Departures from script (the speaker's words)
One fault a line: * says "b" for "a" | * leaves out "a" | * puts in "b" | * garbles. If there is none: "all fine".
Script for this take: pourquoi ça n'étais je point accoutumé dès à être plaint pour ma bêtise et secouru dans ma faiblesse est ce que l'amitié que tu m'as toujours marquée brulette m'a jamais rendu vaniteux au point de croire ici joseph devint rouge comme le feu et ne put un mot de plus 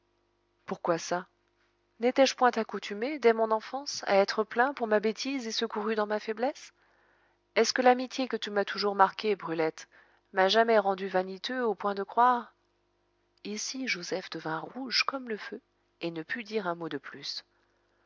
* puts in "mon enfance"
* puts in "dire"